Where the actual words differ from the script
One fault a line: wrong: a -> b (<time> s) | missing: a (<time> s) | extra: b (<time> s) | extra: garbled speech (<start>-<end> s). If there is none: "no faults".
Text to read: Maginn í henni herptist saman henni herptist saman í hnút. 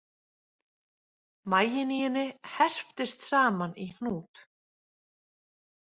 missing: henni herptist saman (3.8 s)